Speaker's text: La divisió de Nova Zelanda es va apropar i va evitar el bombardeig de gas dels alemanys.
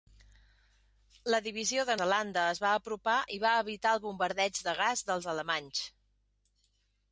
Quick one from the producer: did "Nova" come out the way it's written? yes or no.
no